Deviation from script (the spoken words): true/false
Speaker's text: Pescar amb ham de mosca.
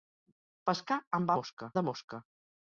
true